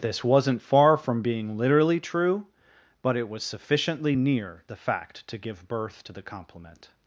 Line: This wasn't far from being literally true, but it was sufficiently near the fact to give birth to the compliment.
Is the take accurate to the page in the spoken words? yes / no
yes